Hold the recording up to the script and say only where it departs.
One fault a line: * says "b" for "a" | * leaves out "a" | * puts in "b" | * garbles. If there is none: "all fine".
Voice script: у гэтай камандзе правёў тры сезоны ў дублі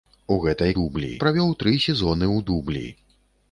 * says "дублі" for "камандзе"